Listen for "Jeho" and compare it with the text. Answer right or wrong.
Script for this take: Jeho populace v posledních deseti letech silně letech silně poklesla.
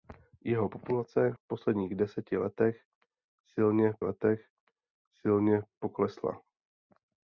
right